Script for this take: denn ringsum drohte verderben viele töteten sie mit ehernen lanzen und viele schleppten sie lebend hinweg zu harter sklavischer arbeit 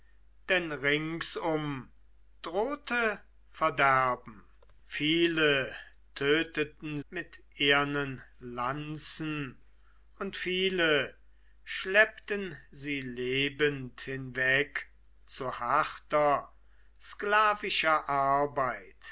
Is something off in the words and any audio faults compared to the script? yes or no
yes